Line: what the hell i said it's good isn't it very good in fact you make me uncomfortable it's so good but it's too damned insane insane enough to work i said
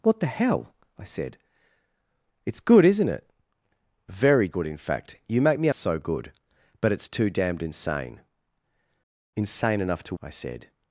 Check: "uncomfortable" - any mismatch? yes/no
yes